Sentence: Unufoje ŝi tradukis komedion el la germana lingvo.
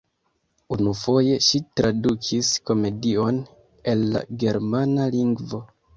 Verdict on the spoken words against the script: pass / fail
pass